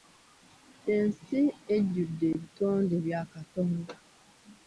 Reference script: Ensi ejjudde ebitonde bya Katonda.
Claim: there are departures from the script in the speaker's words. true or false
false